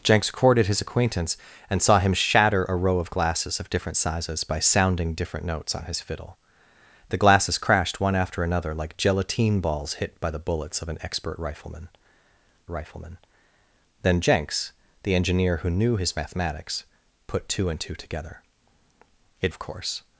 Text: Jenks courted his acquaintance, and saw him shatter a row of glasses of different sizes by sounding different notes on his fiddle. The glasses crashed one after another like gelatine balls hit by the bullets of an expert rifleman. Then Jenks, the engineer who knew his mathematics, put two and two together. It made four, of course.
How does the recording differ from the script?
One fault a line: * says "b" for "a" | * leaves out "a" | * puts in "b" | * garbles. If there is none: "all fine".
* puts in "rifleman"
* leaves out "made four"